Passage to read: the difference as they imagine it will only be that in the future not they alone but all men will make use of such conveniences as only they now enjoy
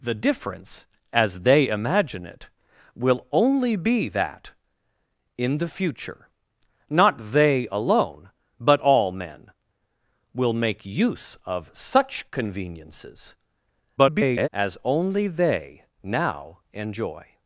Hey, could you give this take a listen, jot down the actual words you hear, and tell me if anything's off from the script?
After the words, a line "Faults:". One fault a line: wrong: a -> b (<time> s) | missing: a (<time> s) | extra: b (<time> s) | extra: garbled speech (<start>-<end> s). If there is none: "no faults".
the difference as they imagine it will only be that in the future not they alone but all men will make use of such conveniences [garbled] as only they now enjoy
Faults:
extra: garbled speech (14.0-14.5 s)